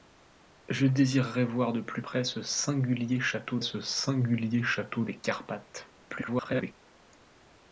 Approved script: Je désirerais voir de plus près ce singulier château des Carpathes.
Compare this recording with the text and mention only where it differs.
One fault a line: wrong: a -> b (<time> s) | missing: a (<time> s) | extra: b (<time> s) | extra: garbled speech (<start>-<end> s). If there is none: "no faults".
extra: ce singulier château (3.6 s)
extra: garbled speech (6.0-6.7 s)